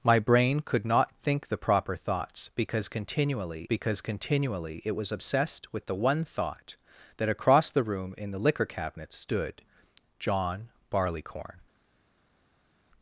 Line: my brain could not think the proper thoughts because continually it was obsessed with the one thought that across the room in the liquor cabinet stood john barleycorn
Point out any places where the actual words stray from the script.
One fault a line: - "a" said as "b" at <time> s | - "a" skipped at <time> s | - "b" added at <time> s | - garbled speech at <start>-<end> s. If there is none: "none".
- "because continually" added at 3.7 s